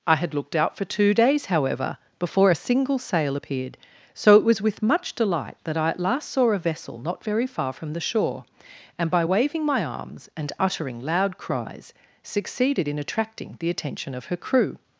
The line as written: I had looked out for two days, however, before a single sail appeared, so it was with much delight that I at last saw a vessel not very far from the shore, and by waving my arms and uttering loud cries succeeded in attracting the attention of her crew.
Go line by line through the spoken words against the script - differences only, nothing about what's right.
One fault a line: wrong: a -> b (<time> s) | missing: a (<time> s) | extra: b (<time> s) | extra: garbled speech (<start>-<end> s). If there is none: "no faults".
no faults